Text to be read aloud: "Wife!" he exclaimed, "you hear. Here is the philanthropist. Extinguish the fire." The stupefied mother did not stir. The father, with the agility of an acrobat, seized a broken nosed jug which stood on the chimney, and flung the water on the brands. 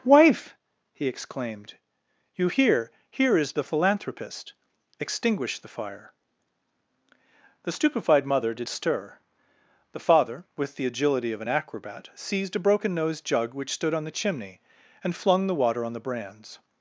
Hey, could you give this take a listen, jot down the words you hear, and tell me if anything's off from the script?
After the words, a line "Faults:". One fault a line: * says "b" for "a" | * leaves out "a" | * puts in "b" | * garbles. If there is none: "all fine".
"Wife!" he exclaimed, "you hear. Here is the philanthropist. Extinguish the fire." The stupefied mother did stir. The father, with the agility of an acrobat, seized a broken nosed jug which stood on the chimney, and flung the water on the brands.
Faults:
* leaves out "not"